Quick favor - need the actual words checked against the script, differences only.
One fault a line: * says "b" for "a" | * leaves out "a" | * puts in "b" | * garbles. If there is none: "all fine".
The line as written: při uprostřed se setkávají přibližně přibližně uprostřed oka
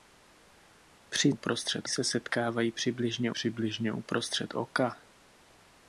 all fine